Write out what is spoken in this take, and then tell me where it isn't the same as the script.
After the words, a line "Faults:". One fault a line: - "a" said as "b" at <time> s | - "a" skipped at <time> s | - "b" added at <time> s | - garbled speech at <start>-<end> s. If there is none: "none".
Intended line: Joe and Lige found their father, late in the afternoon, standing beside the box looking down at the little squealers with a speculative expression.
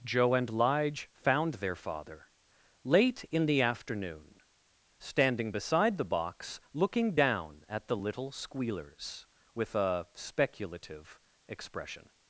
Joe and Lige found their father, late in the afternoon, standing beside the box looking down at the little squealers with a speculative expression.
Faults:
none